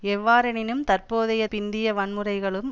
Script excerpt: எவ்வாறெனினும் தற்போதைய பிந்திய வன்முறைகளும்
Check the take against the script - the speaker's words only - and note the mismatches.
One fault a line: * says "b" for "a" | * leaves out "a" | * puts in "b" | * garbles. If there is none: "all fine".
all fine